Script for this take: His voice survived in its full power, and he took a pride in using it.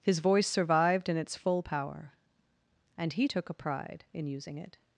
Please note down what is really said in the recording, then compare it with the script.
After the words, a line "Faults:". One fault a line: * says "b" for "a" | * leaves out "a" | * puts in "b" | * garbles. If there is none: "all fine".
His voice survived in its full power, and he took a pride in using it.
Faults:
all fine